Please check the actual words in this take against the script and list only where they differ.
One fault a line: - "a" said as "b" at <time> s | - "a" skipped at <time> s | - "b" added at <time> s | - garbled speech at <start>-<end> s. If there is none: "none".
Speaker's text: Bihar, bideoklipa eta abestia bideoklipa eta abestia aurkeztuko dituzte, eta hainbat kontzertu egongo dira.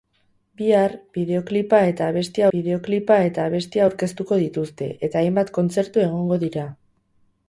none